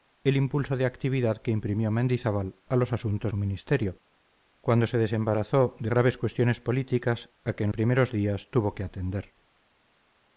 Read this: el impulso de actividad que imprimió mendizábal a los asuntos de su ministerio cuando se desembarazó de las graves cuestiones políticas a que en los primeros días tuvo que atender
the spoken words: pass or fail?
fail